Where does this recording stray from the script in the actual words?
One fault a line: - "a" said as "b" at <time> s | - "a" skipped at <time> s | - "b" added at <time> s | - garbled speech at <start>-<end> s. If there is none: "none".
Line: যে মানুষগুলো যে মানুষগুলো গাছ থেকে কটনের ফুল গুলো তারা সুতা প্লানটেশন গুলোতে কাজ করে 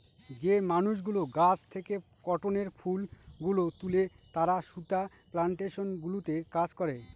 - "যে মানুষগুলো" skipped at 1.2 s
- "তুলে" added at 3.8 s